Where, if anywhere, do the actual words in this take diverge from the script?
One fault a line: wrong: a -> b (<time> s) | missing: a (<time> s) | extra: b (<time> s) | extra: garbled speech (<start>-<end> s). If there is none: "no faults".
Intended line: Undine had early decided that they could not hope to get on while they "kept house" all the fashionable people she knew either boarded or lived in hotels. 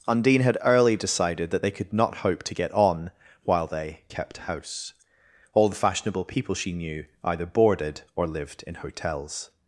no faults